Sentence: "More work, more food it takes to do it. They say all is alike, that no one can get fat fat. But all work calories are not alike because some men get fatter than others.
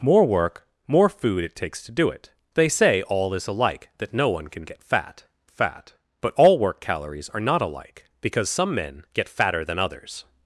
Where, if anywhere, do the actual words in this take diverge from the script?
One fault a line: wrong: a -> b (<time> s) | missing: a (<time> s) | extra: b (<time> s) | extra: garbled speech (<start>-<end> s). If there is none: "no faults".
no faults